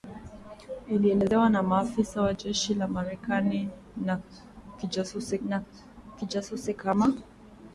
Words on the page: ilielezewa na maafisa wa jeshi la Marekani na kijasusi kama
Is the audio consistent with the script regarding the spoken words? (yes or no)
no